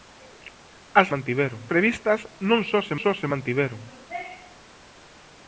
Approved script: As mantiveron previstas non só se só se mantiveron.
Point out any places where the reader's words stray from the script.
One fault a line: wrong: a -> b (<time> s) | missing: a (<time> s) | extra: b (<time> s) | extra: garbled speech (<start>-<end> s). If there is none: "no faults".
no faults